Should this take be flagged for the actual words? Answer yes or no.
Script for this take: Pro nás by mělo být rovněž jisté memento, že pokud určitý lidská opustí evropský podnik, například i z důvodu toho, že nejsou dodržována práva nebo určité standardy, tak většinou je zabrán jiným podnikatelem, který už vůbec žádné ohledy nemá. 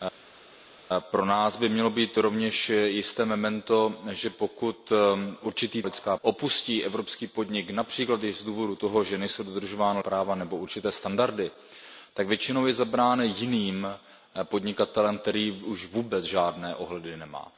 no